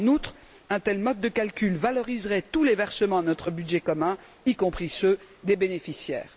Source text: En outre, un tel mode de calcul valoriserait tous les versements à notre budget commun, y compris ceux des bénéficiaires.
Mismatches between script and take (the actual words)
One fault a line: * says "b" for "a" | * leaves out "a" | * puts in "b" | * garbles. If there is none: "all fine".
all fine